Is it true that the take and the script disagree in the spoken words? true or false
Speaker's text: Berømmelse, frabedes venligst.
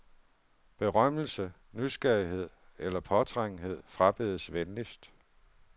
true